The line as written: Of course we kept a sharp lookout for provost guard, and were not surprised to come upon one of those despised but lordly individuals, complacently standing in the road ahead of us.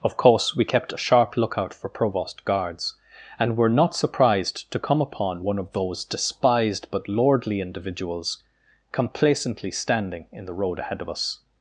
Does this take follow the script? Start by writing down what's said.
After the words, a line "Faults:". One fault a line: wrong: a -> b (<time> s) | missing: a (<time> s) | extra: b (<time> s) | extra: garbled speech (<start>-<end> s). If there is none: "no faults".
Of course we kept a sharp lookout for provost guards, and were not surprised to come upon one of those despised but lordly individuals, complacently standing in the road ahead of us.
Faults:
wrong: guard -> guards (2.4 s)